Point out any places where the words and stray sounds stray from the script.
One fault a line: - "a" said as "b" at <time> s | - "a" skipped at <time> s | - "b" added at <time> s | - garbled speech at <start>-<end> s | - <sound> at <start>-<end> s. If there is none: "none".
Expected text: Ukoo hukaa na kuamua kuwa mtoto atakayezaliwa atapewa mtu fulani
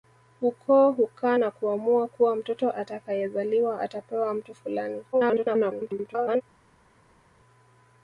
- garbled speech at 5.1-6.4 s